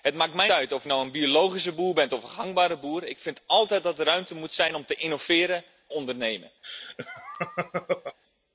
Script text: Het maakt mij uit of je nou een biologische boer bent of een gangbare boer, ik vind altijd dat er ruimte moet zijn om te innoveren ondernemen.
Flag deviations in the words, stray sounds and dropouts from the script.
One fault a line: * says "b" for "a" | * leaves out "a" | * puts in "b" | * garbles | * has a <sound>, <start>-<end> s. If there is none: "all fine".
* has a laugh, 6.6-8.2 s